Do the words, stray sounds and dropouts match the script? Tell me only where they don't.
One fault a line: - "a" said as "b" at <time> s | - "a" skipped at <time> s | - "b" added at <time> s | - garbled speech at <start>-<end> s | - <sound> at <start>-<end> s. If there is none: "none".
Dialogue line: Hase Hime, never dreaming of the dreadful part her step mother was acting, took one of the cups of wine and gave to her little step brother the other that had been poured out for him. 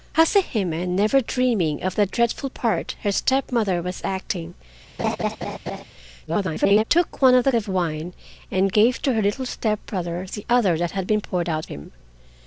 - laugh at 5.0-5.8 s
- garbled speech at 6.3-6.8 s
- "cups" skipped at 7.5 s
- "for" skipped at 11.6 s